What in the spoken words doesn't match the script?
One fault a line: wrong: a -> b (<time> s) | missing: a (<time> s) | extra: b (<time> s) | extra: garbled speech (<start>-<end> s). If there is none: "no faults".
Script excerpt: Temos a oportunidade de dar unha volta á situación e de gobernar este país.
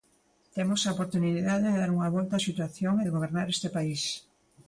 no faults